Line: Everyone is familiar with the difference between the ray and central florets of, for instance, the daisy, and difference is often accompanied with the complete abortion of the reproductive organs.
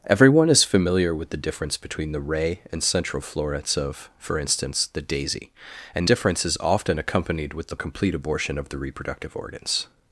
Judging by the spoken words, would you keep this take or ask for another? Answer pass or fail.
pass